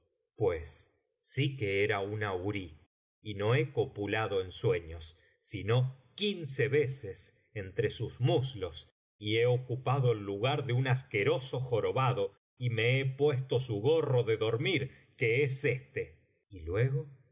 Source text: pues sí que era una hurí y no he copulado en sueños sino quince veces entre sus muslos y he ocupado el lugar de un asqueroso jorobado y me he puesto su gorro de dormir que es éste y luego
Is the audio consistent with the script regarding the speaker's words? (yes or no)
yes